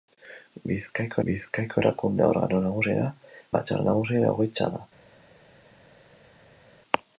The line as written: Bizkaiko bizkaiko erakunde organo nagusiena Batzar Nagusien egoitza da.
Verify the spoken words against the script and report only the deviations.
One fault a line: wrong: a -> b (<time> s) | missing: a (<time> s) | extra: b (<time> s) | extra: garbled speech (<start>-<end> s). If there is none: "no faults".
no faults